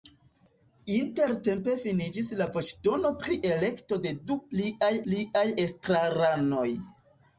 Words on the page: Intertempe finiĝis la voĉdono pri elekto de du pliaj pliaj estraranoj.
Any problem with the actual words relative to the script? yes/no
no